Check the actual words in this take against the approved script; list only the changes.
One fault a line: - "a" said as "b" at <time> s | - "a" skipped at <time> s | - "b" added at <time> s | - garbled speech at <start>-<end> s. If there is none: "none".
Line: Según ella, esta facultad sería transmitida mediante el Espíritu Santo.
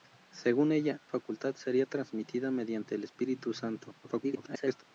- "esta" skipped at 1.0 s
- garbled speech at 4.0-4.8 s